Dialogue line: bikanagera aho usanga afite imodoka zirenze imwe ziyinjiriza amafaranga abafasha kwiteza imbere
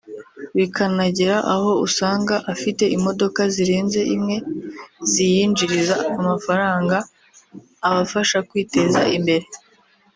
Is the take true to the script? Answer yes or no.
yes